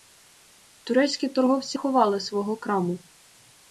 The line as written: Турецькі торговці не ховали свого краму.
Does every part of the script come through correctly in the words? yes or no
no